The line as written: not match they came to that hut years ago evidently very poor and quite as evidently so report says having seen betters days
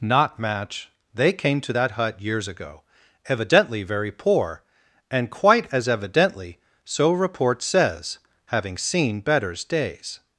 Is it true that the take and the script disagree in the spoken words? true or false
false